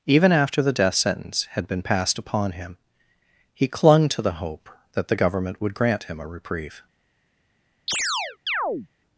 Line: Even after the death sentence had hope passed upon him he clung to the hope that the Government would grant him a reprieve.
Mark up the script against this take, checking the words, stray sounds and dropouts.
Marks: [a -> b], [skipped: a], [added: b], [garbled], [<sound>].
Even after the death sentence had [hope -> been] passed upon him he clung to the hope that the Government would grant him a reprieve. [chirp]